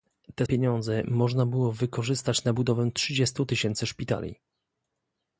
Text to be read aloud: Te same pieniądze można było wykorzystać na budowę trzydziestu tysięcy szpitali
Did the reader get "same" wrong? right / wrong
wrong